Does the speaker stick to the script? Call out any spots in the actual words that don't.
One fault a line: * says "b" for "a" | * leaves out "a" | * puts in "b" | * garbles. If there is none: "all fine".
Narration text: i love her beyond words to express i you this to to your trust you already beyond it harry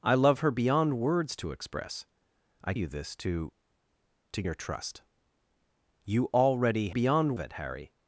all fine